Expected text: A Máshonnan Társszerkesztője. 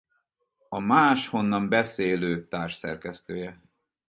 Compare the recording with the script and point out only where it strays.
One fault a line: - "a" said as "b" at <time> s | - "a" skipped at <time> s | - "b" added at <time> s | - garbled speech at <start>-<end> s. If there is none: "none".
- "Beszélő" added at 1.7 s